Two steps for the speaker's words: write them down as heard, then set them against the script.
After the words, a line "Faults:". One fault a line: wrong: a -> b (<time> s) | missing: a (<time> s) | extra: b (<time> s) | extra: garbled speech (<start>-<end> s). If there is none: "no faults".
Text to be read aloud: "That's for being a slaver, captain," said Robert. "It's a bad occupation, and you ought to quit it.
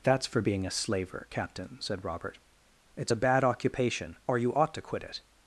"That's for being a slaver, captain," said Robert. "It's a bad occupation, or you ought to quit it.
Faults:
wrong: and -> or (4.3 s)